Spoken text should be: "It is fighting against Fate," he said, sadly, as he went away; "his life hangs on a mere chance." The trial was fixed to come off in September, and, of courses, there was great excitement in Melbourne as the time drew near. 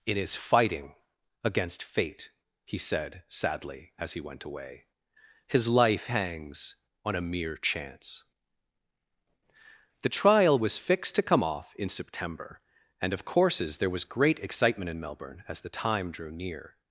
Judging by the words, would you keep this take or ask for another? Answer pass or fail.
pass